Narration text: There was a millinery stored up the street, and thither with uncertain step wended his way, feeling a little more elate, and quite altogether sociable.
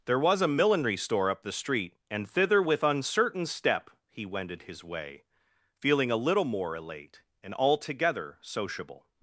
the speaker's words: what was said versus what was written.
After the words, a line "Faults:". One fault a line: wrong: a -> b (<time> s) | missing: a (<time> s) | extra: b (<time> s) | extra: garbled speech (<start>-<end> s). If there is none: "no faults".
There was a millinery store up the street, and thither with uncertain step he wended his way, feeling a little more elate, and altogether sociable.
Faults:
wrong: stored -> store (1.0 s)
extra: he (4.1 s)
missing: quite (7.5 s)